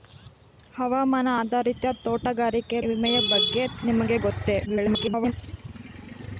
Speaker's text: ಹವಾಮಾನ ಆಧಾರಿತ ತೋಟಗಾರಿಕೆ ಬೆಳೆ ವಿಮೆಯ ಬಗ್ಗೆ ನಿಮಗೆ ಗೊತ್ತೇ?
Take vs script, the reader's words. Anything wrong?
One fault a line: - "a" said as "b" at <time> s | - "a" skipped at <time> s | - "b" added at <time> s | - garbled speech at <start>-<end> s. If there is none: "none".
- "ಬೆಳೆ" skipped at 2.8 s
- garbled speech at 4.7-5.3 s